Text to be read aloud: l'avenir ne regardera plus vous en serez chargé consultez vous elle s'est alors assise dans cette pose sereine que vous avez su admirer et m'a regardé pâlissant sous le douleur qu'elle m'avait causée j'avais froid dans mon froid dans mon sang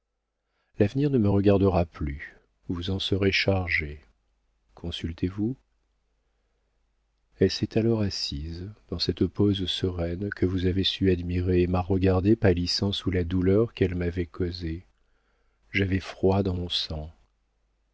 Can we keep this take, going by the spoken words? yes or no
no